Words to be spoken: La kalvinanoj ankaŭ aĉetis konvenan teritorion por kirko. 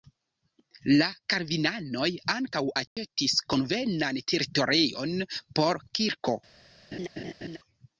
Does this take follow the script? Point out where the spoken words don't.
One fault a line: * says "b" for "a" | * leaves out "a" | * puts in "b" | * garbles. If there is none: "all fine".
all fine